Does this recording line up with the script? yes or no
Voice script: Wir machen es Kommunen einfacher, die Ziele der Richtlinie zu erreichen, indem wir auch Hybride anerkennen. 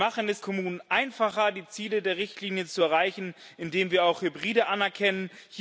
yes